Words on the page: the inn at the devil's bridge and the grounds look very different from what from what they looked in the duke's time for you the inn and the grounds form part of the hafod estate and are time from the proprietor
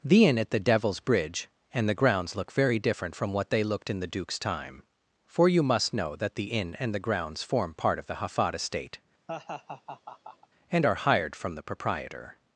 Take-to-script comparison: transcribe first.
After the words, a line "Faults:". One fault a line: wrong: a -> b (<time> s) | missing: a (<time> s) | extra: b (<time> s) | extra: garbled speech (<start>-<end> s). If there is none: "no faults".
the inn at the devil's bridge and the grounds look very different from what they looked in the duke's time for you must know that the inn and the grounds form part of the hafod estate and are hired from the proprietor
Faults:
missing: from what (3.5 s)
extra: must know that (5.6 s)
wrong: time -> hired (10.9 s)